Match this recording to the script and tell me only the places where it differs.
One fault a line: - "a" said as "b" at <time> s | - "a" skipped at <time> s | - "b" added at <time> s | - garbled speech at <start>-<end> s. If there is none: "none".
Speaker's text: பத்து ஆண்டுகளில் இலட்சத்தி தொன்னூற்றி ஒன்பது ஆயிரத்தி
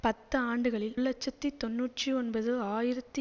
none